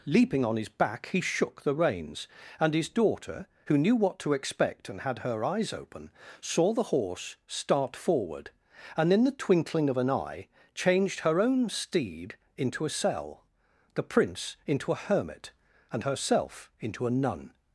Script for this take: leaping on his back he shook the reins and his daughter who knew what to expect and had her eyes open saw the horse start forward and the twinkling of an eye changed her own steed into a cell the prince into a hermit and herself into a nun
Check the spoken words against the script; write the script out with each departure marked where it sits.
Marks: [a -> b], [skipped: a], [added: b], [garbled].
leaping on his back he shook the reins and his daughter who knew what to expect and had her eyes open saw the horse start forward and [added: in] the twinkling of an eye changed her own steed into a cell the prince into a hermit and herself into a nun